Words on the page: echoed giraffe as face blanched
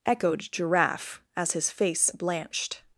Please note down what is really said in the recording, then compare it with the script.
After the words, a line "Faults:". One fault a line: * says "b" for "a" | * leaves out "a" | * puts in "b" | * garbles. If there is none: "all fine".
echoed giraffe as his face blanched
Faults:
* puts in "his"